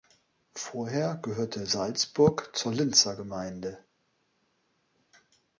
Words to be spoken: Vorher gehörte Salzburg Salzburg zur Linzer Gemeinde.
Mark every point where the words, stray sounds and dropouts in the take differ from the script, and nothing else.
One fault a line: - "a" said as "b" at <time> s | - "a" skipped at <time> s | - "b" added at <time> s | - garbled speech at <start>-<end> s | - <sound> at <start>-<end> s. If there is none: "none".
- "Salzburg" skipped at 2.5 s